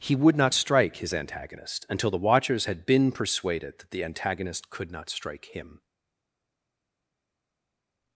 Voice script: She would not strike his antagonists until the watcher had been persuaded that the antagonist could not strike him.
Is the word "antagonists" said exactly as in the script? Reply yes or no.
no